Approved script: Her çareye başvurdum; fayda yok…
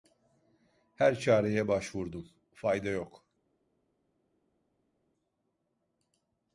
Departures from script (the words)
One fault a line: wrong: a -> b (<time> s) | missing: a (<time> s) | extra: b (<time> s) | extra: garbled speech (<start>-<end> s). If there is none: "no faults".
no faults